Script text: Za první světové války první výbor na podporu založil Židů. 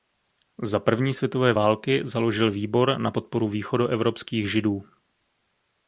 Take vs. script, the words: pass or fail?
fail